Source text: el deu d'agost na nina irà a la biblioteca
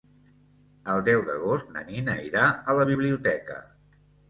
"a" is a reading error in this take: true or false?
false